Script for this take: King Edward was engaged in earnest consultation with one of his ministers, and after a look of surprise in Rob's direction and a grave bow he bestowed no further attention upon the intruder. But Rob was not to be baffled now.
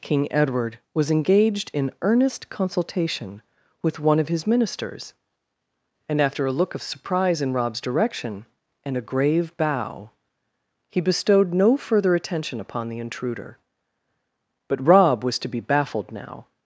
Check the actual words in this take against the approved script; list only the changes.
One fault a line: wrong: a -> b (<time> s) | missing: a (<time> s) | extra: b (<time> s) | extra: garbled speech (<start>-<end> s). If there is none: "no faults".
missing: not (15.4 s)